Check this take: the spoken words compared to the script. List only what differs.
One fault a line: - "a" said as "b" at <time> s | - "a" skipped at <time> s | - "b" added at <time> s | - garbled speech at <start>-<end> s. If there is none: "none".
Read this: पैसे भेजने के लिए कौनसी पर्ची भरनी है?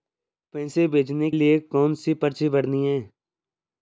- "के" skipped at 1.3 s